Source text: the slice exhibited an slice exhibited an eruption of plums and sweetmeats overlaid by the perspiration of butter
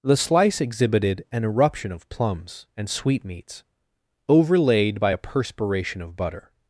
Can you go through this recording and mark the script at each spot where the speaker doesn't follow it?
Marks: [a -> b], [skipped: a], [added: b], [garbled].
the slice exhibited an [skipped: slice exhibited an] eruption of plums and sweetmeats overlaid by [the -> a] perspiration of butter